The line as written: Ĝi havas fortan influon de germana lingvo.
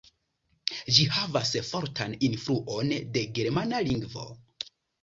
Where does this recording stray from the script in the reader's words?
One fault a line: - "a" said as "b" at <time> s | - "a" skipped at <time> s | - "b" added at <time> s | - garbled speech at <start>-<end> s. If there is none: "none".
none